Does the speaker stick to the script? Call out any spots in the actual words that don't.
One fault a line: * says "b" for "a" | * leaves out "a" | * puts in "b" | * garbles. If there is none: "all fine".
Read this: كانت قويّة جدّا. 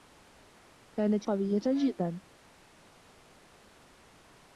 all fine